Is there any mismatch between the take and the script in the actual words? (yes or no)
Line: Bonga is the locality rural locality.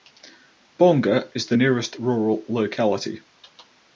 yes